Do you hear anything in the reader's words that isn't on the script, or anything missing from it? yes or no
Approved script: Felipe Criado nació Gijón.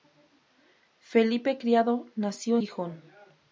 no